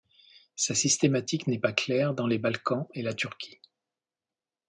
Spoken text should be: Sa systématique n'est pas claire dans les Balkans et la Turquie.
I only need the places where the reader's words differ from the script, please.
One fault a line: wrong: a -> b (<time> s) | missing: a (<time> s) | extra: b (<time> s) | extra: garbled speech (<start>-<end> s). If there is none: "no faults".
no faults